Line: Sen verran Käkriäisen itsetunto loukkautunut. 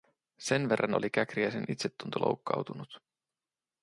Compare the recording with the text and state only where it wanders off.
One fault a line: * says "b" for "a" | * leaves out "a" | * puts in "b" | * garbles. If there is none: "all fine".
* puts in "oli"